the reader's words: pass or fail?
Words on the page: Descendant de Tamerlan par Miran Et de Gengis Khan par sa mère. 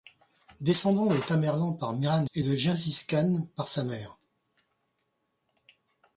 pass